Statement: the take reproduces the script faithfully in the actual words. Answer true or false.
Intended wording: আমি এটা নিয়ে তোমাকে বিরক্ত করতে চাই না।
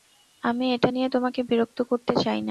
true